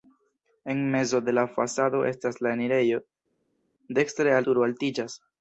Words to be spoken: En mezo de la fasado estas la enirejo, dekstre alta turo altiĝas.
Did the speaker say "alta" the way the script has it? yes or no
no